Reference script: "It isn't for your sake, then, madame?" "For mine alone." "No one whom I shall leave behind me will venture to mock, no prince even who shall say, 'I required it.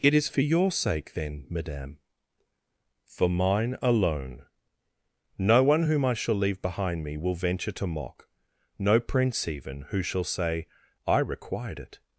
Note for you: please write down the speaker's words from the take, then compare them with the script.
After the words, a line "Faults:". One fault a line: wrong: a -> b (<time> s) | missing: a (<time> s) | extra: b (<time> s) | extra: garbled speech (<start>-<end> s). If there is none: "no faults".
"It is for your sake, then, madame?" "For mine alone." "No one whom I shall leave behind me will venture to mock, no prince even who shall say, 'I required it.
Faults:
wrong: isn't -> is (0.1 s)